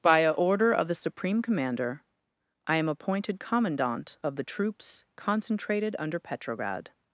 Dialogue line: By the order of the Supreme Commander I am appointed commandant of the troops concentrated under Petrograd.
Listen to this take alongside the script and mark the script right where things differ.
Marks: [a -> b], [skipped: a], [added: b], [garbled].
By [the -> a] order of the Supreme Commander I am appointed commandant of the troops concentrated under Petrograd.